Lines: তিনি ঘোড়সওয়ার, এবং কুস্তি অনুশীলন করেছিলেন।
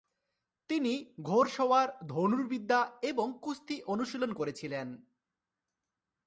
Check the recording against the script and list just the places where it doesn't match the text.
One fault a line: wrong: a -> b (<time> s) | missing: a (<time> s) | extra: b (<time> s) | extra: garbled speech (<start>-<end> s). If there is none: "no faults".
extra: ধনুর্বিদ্যা (2.1 s)